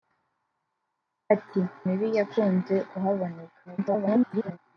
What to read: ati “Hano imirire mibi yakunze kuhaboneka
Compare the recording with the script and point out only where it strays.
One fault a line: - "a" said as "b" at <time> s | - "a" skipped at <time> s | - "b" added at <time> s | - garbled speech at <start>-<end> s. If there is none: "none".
- "Hano imirire" skipped at 1.6 s
- garbled speech at 3.6-4.6 s